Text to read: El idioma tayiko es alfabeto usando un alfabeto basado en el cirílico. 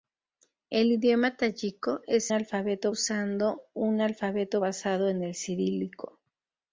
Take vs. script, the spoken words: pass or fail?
pass